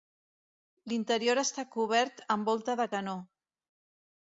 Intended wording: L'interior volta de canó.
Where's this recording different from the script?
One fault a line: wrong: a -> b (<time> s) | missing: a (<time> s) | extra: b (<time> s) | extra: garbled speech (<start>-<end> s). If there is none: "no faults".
extra: està cobert amb (1.4 s)